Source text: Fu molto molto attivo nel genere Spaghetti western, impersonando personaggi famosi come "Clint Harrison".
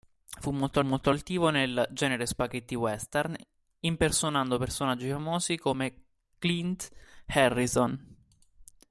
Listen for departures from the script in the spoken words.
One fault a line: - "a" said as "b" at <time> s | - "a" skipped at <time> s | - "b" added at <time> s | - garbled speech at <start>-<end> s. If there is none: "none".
none